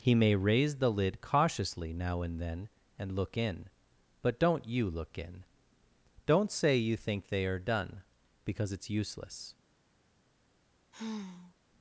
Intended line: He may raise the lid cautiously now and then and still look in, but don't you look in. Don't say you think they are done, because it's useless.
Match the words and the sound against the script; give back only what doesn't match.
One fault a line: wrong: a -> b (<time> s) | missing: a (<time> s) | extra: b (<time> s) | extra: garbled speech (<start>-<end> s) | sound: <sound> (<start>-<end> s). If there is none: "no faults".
missing: still (3.1 s)
sound: sigh (10.9-11.6 s)